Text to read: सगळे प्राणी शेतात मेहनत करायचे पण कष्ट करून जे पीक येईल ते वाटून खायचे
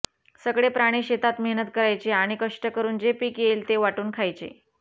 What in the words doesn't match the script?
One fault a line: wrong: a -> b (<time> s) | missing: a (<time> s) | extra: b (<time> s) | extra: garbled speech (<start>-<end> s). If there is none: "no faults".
wrong: पण -> आणि (2.1 s)